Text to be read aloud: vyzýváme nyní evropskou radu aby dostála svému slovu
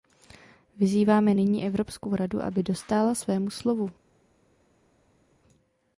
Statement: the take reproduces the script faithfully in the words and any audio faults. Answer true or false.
true